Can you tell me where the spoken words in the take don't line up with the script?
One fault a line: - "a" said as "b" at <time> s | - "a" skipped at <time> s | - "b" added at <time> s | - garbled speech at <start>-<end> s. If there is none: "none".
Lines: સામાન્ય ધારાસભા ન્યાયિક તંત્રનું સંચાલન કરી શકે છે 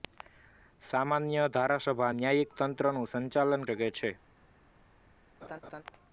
- "કરી" skipped at 3.7 s